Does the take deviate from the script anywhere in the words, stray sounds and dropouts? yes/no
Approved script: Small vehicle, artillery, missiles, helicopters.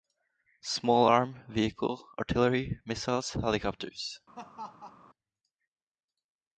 yes